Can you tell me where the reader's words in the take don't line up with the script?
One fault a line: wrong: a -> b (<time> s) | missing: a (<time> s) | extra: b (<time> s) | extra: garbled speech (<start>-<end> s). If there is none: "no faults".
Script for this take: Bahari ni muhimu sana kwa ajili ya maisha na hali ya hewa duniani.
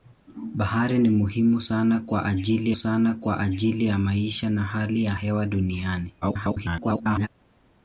extra: sana kwa ajili (2.8 s)
extra: garbled speech (6.2-7.3 s)